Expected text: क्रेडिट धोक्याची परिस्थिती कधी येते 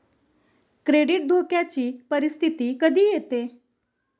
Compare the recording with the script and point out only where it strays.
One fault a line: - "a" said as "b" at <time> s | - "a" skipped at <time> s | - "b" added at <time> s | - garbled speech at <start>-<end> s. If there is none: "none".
none